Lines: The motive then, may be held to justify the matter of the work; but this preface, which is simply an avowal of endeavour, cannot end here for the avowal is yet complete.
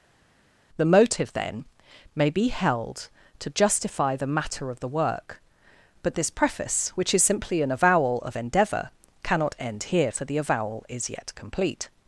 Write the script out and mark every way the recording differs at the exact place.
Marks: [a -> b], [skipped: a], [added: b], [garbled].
The motive then, may be held to justify the matter of the work; but this preface, which is simply an avowal of endeavour, cannot end here for the avowal is yet complete.